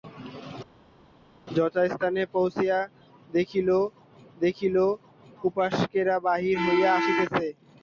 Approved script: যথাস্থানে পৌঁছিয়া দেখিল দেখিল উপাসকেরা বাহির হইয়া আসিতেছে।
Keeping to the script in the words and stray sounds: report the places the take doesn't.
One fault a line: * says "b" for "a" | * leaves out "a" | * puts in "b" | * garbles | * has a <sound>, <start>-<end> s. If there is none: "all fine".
all fine